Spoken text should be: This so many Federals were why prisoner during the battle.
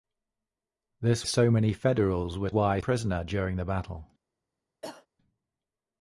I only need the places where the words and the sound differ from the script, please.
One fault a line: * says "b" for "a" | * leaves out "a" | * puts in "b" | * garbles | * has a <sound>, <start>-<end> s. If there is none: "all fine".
* has a cough, 4.8-5.1 s